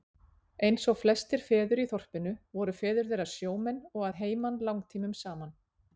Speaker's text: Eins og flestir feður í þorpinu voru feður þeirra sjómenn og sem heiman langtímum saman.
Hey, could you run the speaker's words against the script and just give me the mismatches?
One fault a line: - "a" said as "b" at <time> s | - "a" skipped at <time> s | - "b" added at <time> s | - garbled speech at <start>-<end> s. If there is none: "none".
- "sem" said as "að" at 4.1 s